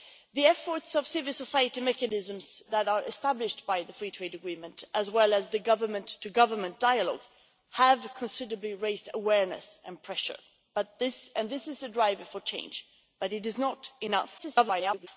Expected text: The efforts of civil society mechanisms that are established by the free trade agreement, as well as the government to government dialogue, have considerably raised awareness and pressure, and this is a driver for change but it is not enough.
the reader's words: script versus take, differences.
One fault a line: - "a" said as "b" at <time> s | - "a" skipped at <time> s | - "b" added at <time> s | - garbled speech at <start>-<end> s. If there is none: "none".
- garbled speech at 14.4-15.1 s